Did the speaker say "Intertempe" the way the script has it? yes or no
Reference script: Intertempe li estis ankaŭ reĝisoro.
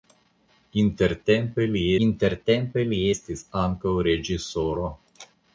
yes